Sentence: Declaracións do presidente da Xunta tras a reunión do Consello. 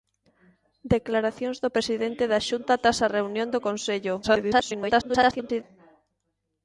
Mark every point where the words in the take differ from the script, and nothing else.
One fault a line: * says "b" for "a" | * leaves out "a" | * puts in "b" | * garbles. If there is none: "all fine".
* garbles